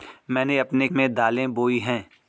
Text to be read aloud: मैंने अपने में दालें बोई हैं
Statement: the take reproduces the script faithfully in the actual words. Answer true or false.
true